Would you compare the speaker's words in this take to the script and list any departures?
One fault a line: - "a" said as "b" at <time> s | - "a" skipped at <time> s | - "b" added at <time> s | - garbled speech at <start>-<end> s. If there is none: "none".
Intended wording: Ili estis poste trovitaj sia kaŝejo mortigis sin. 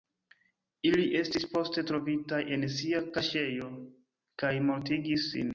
- "en" added at 2.6 s
- "kaj" added at 4.4 s